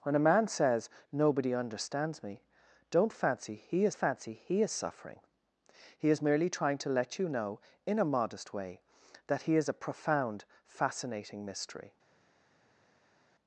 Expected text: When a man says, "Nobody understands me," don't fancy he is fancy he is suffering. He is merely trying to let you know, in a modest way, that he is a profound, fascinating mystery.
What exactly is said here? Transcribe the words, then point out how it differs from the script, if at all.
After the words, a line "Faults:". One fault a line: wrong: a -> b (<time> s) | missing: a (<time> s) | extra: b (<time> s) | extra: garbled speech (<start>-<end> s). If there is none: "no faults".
When a man says, "Nobody understands me," don't fancy he is fancy he is suffering. He is merely trying to let you know, in a modest way, that he is a profound, fascinating mystery.
Faults:
no faults